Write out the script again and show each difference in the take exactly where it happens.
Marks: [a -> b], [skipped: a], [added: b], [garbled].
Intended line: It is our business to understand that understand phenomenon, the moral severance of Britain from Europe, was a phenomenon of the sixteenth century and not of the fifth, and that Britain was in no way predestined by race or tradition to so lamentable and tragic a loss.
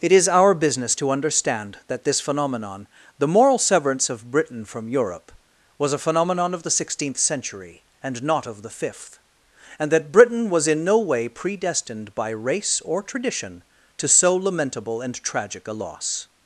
It is our business to understand that [understand -> this] phenomenon, the moral severance of Britain from Europe, was a phenomenon of the sixteenth century and not of the fifth, and that Britain was in no way predestined by race or tradition to so lamentable and tragic a loss.